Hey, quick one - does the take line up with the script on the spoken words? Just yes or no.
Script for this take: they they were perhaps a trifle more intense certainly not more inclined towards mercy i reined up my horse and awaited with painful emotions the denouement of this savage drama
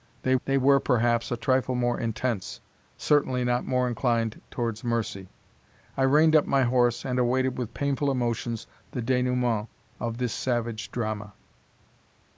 yes